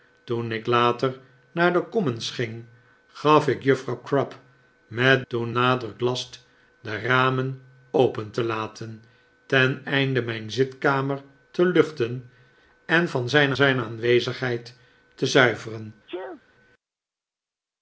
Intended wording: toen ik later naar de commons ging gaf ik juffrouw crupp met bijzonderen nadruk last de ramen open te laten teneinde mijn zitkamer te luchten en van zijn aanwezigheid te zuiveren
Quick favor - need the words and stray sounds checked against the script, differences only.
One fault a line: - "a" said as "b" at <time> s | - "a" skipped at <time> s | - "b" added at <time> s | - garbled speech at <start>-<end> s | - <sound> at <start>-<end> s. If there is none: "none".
- "bijzonderen" said as "toen" at 5.3 s
- "zijn" added at 13.5 s
- sneeze at 16.1-16.4 s